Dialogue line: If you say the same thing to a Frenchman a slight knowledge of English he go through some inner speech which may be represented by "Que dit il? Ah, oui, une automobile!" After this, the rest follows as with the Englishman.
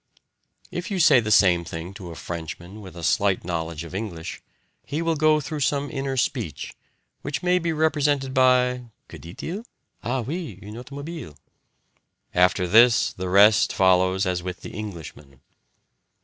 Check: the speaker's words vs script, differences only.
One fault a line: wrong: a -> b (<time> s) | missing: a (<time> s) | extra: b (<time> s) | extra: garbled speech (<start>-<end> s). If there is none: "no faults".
extra: with (2.8 s)
extra: will (5.0 s)